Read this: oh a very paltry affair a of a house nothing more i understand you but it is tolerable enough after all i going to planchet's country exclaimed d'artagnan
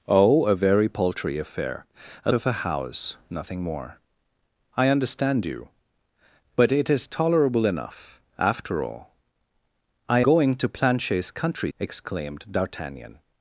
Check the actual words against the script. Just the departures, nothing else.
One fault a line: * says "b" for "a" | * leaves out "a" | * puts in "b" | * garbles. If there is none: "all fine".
all fine